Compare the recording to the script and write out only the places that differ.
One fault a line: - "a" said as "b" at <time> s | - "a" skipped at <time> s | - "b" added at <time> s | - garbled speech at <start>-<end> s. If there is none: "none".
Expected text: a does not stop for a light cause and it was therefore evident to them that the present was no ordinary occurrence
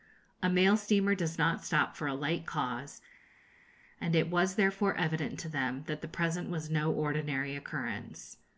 - "mail steamer" added at 0.5 s